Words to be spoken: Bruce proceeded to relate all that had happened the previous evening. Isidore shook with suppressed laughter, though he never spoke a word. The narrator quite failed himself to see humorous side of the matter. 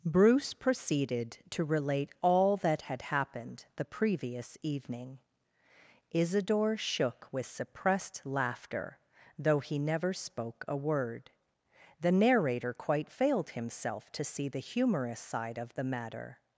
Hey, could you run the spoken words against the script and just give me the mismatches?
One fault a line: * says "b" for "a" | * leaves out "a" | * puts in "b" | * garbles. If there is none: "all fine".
* puts in "the"